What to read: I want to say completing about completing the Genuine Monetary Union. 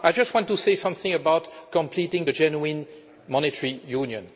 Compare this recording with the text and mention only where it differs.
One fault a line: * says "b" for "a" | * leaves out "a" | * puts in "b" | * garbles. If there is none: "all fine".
* puts in "just"
* says "something" for "completing"